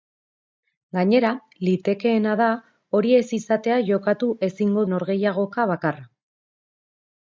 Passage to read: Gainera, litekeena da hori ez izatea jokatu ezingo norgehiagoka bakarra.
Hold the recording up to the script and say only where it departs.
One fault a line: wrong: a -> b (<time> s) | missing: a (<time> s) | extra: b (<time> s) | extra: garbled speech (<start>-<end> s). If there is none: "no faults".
no faults